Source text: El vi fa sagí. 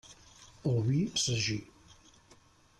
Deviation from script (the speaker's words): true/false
true